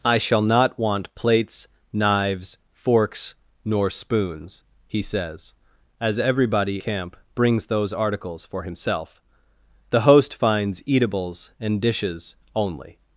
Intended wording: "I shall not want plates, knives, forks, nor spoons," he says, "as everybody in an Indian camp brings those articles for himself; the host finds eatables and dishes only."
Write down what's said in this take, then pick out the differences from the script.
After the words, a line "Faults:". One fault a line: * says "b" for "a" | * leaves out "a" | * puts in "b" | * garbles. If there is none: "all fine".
"I shall not want plates, knives, forks, nor spoons," he says, "as everybody camp brings those articles for himself; the host finds eatables and dishes only."
Faults:
* leaves out "in an Indian"